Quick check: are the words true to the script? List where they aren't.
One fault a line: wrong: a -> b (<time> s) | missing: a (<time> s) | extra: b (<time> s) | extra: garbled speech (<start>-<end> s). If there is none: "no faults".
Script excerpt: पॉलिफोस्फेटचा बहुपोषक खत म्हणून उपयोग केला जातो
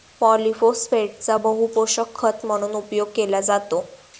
no faults